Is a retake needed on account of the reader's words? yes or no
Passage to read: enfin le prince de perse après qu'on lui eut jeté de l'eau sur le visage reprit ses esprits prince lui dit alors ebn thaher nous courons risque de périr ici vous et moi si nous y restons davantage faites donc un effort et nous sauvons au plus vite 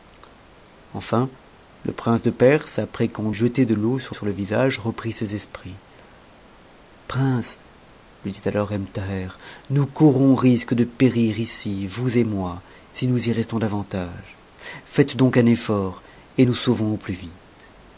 yes